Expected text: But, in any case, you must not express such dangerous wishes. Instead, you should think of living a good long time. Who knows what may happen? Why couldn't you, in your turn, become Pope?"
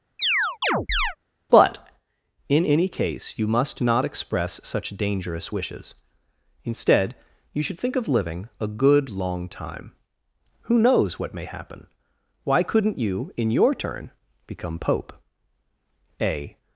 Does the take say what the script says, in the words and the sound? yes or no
no